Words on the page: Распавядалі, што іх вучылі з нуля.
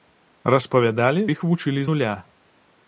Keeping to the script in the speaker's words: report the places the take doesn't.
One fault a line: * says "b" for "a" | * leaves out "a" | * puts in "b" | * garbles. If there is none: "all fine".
* leaves out "што"
* leaves out "з"